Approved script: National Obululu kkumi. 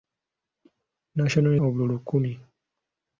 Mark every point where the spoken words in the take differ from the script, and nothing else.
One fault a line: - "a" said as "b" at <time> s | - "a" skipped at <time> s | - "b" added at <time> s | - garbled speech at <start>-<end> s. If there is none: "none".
none